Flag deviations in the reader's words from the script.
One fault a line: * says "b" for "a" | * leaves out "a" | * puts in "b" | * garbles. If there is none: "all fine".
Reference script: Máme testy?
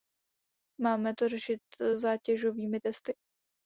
* puts in "to řešit zátěžovými"